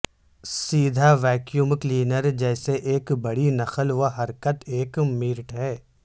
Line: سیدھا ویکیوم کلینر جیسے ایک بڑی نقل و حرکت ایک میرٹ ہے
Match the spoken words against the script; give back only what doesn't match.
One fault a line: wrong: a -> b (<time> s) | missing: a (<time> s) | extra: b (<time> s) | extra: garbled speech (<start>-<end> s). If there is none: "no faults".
no faults